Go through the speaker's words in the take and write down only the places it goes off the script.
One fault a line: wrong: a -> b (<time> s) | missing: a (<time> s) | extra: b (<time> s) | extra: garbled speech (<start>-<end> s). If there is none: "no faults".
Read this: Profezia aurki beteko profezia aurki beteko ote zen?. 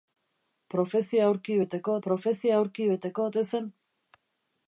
no faults